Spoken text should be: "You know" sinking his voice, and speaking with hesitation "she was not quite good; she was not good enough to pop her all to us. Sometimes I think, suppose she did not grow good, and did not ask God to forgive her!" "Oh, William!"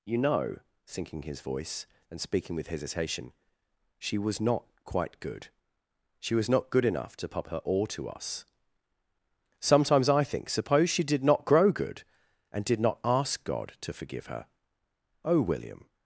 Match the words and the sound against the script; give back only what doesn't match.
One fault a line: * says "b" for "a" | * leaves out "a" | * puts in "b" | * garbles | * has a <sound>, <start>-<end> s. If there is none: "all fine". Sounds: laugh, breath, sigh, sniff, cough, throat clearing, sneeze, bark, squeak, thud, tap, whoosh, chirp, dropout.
all fine